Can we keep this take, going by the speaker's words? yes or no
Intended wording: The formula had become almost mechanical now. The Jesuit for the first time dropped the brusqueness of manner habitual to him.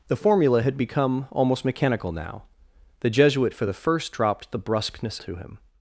no